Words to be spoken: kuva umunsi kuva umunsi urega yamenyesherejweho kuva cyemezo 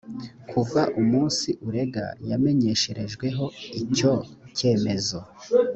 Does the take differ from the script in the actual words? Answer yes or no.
yes